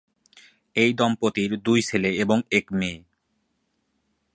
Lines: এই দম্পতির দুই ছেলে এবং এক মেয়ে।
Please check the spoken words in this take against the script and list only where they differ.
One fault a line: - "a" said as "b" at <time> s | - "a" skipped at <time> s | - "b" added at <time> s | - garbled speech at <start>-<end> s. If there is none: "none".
none